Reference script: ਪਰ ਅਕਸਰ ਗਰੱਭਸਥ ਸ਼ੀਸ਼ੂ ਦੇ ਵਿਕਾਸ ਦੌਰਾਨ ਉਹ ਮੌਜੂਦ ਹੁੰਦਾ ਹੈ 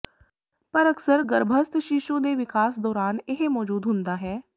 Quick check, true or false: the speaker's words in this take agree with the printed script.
false